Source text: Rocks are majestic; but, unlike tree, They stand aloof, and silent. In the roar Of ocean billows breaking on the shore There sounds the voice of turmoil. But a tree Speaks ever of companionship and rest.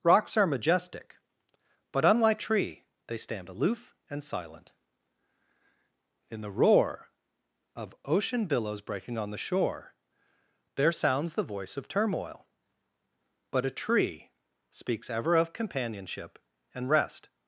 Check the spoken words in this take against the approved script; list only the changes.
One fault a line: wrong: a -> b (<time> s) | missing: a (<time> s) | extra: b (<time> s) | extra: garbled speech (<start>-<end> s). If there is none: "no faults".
no faults